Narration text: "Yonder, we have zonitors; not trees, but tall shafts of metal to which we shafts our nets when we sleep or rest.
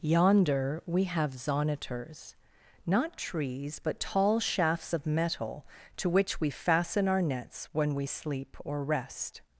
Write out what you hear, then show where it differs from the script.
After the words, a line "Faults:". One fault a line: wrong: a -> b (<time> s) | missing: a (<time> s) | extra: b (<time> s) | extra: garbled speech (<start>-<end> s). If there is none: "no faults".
"Yonder, we have zonitors; not trees, but tall shafts of metal to which we fasten our nets when we sleep or rest.
Faults:
wrong: shafts -> fasten (6.5 s)